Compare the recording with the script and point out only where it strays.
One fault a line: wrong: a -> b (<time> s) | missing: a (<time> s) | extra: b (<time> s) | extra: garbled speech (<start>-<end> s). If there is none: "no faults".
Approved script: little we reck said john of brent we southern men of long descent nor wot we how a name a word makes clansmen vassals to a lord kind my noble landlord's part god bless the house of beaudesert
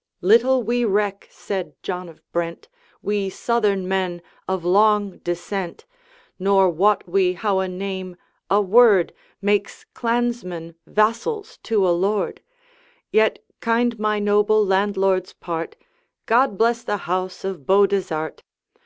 extra: yet (13.1 s)